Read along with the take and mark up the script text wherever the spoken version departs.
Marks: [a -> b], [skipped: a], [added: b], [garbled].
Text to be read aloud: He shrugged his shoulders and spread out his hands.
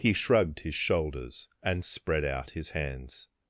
He shrugged his shoulders and spread out his hands.